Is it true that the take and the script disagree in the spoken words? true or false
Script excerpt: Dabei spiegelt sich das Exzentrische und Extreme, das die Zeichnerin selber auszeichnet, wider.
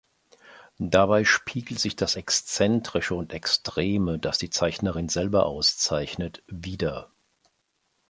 false